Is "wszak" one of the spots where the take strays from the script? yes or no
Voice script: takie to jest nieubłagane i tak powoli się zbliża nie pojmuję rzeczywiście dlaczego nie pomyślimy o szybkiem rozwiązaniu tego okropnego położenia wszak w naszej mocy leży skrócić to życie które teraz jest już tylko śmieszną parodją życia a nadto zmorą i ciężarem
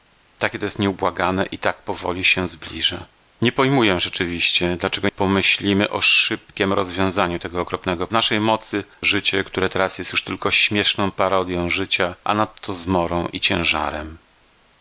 yes